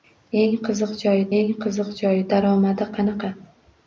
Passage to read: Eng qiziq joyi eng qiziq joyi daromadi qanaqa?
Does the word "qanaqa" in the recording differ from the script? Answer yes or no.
no